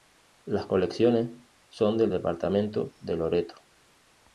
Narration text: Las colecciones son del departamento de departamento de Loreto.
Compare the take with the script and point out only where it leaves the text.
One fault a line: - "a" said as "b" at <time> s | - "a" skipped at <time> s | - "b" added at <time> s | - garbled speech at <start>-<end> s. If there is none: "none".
- "departamento de" skipped at 3.2 s